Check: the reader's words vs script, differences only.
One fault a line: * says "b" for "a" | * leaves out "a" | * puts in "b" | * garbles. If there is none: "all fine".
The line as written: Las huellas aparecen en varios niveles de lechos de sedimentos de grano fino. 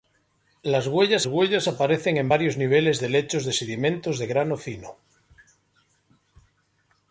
* puts in "huellas"